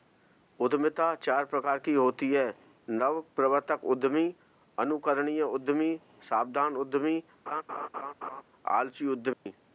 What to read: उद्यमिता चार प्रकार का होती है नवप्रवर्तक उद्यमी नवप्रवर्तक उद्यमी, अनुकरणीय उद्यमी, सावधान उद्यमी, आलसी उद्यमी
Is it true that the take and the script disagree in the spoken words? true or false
true